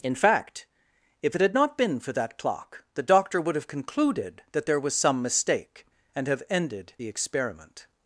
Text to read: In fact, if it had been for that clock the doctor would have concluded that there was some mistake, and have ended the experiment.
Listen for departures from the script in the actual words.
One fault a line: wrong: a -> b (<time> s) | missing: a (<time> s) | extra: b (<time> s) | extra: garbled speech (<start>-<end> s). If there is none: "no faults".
extra: not (1.5 s)